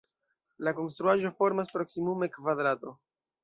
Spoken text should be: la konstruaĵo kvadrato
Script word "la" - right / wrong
right